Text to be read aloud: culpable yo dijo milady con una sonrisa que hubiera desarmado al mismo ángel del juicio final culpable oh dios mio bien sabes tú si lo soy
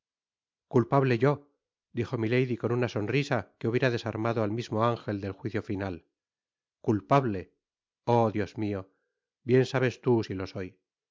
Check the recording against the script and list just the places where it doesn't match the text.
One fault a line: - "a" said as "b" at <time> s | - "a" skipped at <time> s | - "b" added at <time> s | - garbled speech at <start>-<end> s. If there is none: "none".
none